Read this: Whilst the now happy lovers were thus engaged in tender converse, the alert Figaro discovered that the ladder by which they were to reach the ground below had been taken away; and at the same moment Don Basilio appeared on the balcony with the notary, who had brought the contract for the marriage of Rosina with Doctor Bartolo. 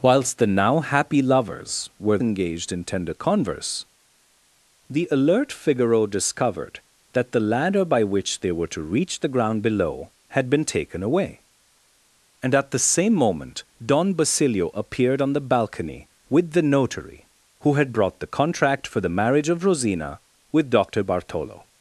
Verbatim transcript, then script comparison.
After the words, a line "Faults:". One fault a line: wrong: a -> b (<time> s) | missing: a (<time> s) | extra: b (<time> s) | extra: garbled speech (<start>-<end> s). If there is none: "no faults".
Whilst the now happy lovers were engaged in tender converse, the alert Figaro discovered that the ladder by which they were to reach the ground below had been taken away; and at the same moment Don Basilio appeared on the balcony with the notary, who had brought the contract for the marriage of Rosina with Doctor Bartolo.
Faults:
missing: thus (2.2 s)